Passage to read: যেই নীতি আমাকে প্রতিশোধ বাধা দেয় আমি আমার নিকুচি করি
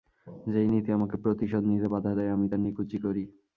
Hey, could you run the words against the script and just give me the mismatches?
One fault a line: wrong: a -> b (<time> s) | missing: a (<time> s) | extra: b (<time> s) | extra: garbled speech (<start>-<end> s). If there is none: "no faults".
extra: নিতে (1.7 s)
wrong: আমার -> তার (2.5 s)